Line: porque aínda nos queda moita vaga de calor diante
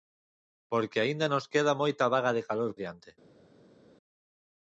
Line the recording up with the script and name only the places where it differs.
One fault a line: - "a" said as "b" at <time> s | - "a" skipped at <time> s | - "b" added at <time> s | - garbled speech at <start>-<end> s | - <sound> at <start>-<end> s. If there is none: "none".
none